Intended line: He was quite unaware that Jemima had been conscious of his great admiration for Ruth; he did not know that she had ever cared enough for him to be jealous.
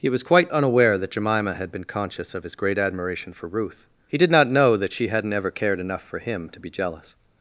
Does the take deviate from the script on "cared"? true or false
false